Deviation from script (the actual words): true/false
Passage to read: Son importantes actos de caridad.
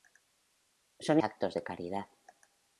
true